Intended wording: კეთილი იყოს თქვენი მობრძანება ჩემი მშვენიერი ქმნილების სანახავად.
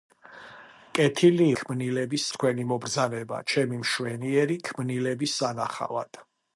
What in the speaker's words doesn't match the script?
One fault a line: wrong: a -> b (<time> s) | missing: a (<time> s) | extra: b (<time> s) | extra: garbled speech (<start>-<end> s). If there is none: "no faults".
wrong: იყოს -> ქმნილების (1.6 s)